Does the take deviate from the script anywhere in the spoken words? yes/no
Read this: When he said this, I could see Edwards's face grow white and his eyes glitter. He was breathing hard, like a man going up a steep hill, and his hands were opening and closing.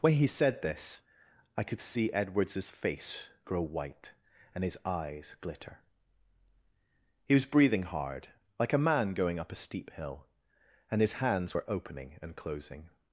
no